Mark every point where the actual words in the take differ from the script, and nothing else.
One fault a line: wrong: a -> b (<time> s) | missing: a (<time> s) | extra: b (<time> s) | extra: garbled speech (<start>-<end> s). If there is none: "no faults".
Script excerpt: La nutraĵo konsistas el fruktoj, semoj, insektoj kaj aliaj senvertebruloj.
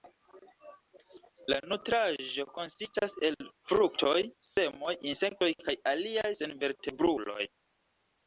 no faults